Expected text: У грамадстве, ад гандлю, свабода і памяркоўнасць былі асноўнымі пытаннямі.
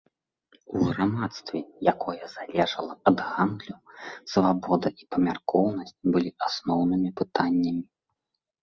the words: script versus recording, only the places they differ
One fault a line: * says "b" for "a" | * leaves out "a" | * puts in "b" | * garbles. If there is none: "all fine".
* puts in "якое залежала"